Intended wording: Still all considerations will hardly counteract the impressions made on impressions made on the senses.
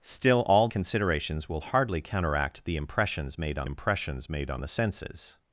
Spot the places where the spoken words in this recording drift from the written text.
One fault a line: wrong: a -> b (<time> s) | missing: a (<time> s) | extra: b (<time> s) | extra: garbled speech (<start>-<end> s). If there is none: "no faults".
no faults